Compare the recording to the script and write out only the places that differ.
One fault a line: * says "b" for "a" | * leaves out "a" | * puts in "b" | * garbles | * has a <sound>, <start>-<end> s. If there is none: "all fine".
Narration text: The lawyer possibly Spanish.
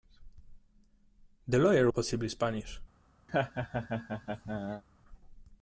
* has a laugh, 3.3-4.8 s